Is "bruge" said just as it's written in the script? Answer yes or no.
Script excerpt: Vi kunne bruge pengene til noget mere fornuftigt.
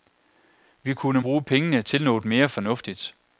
yes